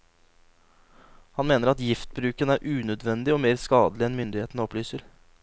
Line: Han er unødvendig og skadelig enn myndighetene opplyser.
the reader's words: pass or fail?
fail